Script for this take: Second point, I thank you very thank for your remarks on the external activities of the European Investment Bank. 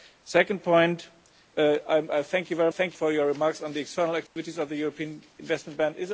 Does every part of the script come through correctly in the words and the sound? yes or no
no